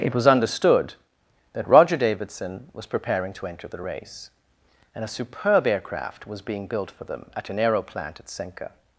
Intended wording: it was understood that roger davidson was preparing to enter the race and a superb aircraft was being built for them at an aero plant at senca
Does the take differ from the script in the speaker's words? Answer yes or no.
no